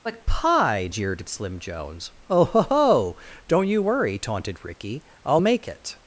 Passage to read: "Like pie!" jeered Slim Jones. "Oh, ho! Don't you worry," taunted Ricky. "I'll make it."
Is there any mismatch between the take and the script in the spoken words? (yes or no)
yes